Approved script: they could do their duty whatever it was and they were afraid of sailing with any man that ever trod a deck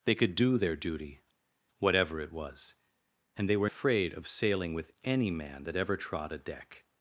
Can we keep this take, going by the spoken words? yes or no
yes